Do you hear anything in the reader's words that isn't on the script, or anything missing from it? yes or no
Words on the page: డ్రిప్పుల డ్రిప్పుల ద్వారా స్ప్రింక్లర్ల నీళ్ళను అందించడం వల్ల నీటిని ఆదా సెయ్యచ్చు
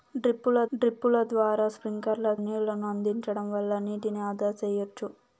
no